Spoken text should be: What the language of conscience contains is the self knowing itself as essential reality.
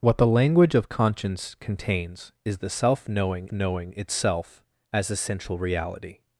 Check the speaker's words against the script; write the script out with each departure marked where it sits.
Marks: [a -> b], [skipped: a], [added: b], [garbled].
What the language of conscience contains is the self knowing [added: knowing] itself as essential reality.